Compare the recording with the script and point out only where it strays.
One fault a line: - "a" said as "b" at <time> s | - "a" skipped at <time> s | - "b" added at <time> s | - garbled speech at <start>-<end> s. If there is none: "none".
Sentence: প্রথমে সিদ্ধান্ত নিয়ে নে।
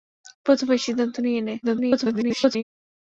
- garbled speech at 1.6-2.6 s